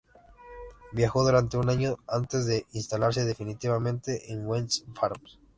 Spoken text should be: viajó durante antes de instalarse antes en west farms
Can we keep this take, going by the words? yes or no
no